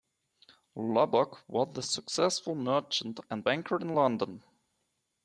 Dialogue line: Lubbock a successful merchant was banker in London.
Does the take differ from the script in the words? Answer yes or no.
yes